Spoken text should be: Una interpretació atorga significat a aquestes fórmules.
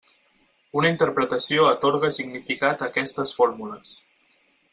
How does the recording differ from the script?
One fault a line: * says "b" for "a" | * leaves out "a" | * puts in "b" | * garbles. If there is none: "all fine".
all fine